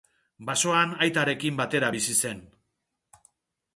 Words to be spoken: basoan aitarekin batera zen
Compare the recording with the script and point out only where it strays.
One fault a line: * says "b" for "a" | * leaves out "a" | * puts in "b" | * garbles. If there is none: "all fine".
* puts in "bizi"